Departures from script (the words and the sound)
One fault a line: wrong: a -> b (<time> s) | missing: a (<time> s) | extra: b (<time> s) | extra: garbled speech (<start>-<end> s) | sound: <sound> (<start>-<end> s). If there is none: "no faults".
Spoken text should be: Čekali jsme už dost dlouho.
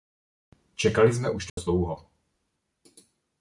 sound: dropout (1.5-1.6 s)